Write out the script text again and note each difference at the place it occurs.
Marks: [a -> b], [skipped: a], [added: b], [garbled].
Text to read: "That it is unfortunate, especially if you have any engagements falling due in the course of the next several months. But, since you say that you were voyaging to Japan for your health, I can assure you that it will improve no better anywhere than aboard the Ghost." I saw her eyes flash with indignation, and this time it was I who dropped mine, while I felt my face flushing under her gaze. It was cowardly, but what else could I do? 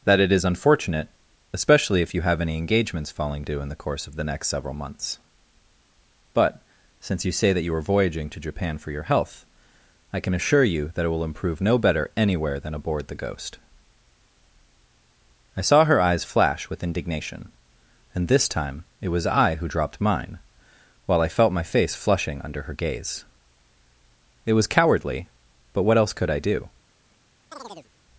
"That it is unfortunate, especially if you have any engagements falling due in the course of the next several months. But, since you say that you [were -> are] voyaging to Japan for your health, I can assure you that it will improve no better anywhere than aboard the Ghost." I saw her eyes flash with indignation, and this time it was I who dropped mine, while I felt my face flushing under her gaze. It was cowardly, but what else could I do?